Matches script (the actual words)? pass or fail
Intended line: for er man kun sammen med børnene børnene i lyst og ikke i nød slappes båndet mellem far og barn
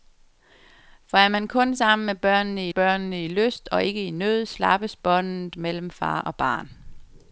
pass